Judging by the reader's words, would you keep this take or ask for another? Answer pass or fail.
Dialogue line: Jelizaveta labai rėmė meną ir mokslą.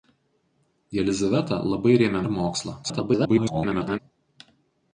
fail